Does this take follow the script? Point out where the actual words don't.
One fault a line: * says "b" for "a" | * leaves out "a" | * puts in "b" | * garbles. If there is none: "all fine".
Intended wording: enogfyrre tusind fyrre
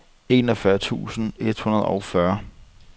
* puts in "et hundrede og"